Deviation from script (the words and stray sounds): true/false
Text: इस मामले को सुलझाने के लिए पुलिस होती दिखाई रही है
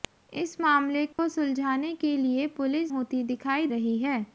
true